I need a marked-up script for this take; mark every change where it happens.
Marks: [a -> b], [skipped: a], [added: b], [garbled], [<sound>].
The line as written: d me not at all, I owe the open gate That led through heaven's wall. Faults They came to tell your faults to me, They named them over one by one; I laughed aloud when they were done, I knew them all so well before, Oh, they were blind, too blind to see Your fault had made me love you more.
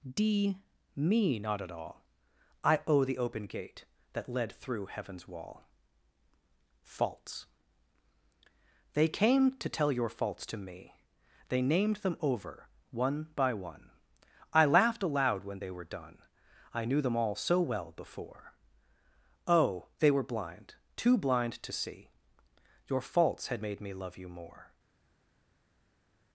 d me not at all, I owe the open gate That led through heaven's wall. Faults They came to tell your faults to me, They named them over one by one; I laughed aloud when they were done, I knew them all so well before, Oh, they were blind, too blind to see Your [fault -> faults] had made me love you more.